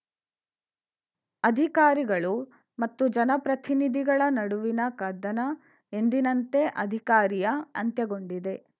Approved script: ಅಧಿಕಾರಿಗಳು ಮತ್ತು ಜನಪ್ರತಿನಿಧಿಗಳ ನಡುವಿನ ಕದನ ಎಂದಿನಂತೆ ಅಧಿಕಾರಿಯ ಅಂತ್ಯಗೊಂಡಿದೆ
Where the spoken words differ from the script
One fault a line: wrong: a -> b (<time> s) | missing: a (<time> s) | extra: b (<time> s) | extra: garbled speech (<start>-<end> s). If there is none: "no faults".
no faults